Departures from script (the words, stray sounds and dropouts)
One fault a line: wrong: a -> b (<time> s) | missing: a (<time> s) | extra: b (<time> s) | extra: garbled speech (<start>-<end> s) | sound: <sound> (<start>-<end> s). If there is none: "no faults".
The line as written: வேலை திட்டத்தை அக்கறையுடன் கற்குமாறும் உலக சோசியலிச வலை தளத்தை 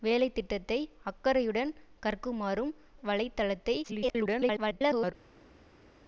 missing: உலக சோசியலிச (2.7 s)
extra: garbled speech (3.8-5.1 s)